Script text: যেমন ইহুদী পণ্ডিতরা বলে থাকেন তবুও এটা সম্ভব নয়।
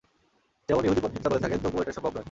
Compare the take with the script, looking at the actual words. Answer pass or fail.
pass